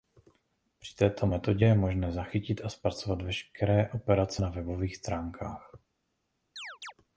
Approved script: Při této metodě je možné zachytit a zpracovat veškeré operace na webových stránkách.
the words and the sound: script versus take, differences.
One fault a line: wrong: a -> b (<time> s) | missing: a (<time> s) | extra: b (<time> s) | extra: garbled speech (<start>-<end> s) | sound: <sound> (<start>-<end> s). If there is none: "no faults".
sound: chirp (6.6-6.9 s)